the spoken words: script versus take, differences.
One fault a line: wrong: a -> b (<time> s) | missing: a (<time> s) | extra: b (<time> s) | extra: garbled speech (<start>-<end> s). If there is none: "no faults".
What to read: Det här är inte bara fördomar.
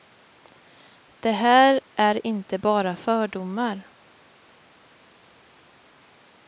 no faults